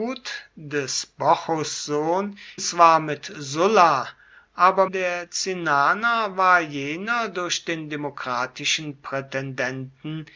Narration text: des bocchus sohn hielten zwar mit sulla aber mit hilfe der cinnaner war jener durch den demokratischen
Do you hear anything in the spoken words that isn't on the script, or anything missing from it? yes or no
yes